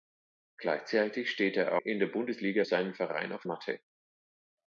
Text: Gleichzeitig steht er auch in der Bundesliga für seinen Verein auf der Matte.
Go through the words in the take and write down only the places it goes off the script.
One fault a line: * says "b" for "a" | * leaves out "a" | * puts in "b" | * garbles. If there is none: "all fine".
* leaves out "auch"
* leaves out "für"
* leaves out "der"